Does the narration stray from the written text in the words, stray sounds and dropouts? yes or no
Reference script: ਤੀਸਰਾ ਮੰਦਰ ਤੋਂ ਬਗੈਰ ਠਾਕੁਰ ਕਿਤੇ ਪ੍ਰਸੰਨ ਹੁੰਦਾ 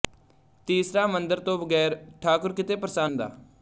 no